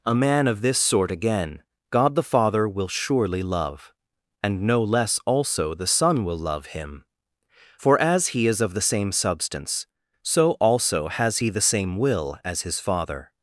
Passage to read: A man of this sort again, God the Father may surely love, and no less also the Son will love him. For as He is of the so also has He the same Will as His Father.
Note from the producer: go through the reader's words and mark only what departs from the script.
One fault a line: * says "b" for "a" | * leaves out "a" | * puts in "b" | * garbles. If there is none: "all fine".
* says "will" for "may"
* puts in "same Substance"